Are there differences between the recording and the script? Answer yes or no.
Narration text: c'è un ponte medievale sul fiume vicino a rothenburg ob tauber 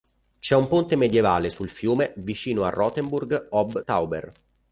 no